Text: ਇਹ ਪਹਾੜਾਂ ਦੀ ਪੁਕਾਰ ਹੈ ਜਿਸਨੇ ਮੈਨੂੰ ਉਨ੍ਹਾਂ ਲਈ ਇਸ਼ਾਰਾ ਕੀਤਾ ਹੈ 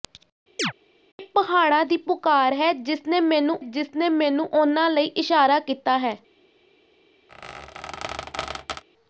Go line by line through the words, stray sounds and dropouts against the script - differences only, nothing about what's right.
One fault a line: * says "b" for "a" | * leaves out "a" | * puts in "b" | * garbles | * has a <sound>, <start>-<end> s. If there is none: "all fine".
* has a chirp, 0.6-0.7 s
* puts in "ਜਿਸਨੇ ਮੈਨੂੰ"
* has a squeak, 7.3-8.8 s